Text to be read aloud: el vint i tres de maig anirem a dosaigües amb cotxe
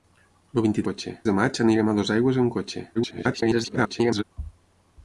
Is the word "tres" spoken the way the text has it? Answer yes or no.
no